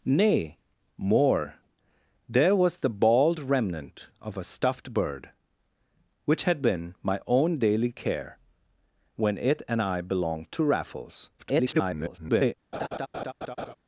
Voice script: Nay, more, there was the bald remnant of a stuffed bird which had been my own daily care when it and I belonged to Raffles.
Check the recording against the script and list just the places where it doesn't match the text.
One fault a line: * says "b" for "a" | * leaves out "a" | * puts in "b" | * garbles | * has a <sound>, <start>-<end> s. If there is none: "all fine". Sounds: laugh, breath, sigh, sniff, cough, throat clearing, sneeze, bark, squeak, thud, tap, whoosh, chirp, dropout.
* garbles
* has a laugh, 12.7-13.7 s